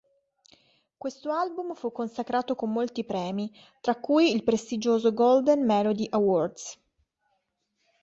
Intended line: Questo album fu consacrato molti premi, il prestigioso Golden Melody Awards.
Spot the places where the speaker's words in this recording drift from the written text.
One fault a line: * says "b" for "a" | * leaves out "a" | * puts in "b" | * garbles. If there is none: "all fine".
* puts in "con"
* puts in "tra cui"